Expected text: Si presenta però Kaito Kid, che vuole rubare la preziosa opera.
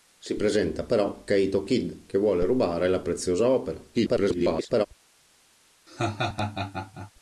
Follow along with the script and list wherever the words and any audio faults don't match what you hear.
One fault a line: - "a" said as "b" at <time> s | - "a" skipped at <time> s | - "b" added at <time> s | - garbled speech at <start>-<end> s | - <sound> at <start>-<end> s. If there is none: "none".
- garbled speech at 3.9-4.9 s
- laugh at 5.9-7.1 s